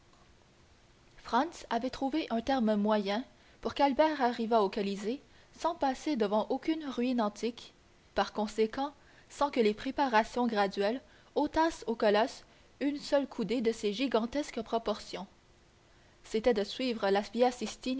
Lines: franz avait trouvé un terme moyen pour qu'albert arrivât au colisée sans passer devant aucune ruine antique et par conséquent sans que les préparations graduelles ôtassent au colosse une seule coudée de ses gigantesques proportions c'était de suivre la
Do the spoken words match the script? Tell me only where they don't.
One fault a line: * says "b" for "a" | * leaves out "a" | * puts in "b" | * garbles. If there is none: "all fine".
* leaves out "et"